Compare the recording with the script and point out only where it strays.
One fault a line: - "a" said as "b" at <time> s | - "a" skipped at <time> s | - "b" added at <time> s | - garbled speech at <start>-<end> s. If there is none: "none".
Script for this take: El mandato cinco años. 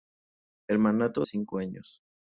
none